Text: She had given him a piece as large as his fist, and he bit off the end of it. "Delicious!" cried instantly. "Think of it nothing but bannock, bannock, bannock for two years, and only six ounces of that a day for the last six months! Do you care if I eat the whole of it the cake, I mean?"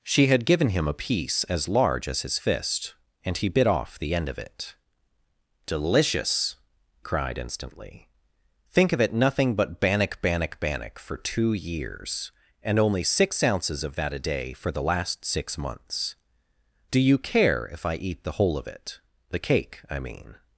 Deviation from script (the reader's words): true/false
false